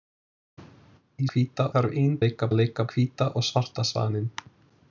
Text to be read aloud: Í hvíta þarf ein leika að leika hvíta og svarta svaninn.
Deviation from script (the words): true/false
false